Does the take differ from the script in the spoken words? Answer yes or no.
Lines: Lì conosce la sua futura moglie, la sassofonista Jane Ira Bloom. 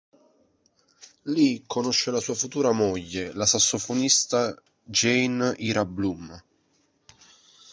no